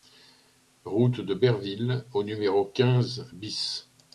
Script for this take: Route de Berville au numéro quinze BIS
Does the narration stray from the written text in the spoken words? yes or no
no